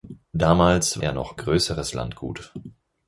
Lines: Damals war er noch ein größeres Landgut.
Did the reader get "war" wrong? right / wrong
wrong